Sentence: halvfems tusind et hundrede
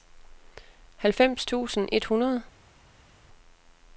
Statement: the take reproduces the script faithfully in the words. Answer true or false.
true